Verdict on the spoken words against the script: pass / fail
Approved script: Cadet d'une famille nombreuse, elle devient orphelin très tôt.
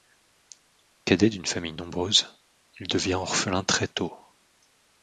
fail